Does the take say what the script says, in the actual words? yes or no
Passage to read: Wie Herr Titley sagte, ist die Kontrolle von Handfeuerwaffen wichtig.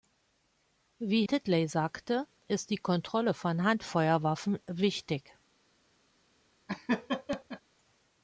no